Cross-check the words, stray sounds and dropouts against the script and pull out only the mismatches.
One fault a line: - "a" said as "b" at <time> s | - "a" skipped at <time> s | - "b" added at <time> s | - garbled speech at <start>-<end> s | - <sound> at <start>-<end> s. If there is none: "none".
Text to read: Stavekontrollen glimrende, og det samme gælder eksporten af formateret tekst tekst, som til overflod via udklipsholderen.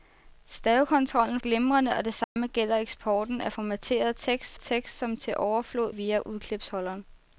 - dropout at 2.2-2.4 s